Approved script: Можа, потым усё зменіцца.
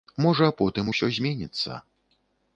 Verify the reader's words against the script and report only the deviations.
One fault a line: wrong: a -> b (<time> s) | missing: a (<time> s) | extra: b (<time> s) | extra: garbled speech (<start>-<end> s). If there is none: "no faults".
no faults